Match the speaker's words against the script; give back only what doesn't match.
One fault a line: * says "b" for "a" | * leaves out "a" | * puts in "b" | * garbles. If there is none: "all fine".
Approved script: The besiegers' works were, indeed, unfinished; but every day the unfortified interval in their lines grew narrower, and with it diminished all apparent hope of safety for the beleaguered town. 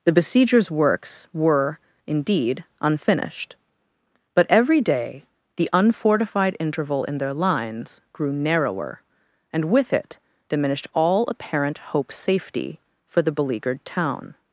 * leaves out "of"